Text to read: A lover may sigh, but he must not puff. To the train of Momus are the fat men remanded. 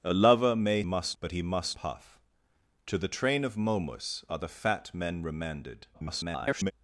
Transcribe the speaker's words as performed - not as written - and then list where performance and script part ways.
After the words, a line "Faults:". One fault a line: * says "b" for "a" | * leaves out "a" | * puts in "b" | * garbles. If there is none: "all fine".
A lover may must, but he must puff. To the train of Momus are the fat men remanded. [garbled]
Faults:
* says "must" for "sigh"
* leaves out "not"
* garbles